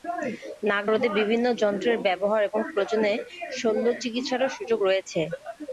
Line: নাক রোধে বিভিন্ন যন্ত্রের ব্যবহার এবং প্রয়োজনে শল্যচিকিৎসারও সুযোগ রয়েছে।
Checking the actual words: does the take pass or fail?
pass